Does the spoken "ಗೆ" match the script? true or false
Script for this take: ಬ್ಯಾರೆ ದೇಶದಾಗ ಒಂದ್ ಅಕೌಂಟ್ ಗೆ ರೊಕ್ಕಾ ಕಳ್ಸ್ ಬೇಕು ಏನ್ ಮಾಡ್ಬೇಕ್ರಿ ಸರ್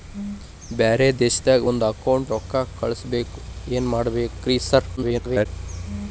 false